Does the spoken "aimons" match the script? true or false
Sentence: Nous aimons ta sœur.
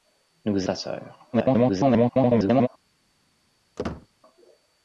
false